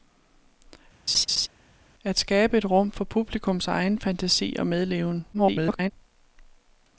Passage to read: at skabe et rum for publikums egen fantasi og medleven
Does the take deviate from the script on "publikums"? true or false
false